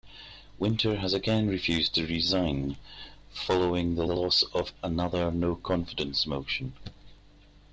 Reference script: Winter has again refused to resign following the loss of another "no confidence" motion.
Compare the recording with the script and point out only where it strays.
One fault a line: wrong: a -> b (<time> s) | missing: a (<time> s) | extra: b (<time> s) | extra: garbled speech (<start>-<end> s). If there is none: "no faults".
extra: the (4.0 s)